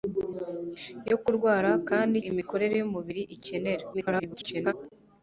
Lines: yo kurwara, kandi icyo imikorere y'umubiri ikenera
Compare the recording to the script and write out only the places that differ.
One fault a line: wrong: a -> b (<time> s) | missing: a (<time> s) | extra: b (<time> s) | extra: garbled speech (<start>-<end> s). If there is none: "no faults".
missing: icyo (2.1 s)
extra: garbled speech (3.9-4.7 s)